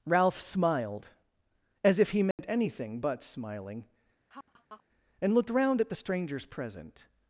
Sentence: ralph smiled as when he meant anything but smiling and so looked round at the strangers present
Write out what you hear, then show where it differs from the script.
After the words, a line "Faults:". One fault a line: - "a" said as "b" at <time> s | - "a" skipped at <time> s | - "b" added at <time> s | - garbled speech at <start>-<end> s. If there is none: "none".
ralph smiled as if he meant anything but smiling and looked round at the strangers present
Faults:
- "when" said as "if" at 2.0 s
- "so" skipped at 5.3 s